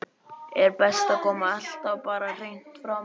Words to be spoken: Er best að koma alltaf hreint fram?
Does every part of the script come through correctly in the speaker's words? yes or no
no